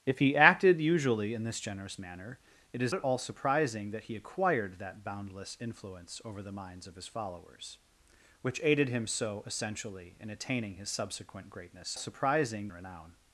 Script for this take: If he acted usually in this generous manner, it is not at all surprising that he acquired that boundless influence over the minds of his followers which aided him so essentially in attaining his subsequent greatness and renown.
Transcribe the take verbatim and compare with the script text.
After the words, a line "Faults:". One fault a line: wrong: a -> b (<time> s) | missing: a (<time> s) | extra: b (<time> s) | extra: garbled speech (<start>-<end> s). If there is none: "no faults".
If he acted usually in this generous manner, it is at all surprising that he acquired that boundless influence over the minds of his followers which aided him so essentially in attaining his subsequent greatness surprising renown.
Faults:
missing: not (3.0 s)
wrong: and -> surprising (12.0 s)